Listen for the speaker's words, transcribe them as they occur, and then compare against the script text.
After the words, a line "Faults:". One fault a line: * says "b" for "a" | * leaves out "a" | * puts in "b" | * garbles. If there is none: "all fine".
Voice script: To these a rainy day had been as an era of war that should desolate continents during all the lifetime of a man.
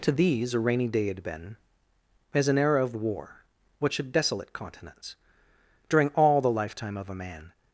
To these a rainy day had been as an era of war what should desolate continents during all the lifetime of a man.
Faults:
* says "what" for "that"